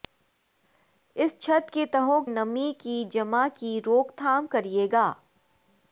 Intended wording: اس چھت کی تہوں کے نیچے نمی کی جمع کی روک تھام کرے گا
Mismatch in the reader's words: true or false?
true